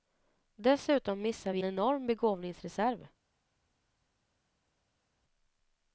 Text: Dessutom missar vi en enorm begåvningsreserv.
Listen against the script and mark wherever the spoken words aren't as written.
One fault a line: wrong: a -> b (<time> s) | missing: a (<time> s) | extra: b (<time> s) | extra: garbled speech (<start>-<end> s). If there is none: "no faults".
missing: en (1.6 s)